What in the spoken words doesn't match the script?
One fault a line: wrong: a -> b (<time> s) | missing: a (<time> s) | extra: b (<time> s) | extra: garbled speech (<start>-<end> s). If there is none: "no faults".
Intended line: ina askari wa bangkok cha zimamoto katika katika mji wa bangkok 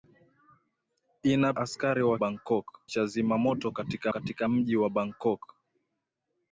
no faults